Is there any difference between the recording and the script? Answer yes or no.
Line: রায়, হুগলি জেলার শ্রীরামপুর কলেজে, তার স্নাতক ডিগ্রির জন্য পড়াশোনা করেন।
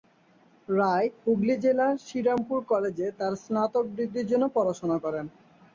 no